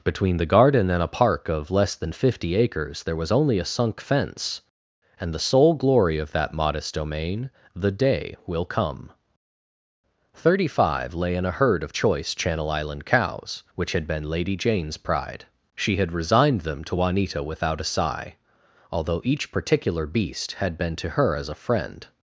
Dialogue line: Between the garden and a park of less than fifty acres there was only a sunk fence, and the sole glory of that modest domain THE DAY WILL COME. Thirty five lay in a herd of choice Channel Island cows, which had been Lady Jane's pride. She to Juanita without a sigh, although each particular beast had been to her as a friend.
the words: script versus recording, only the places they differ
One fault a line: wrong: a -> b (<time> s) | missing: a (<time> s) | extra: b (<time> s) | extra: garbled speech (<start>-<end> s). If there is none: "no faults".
extra: had resigned them (16.0 s)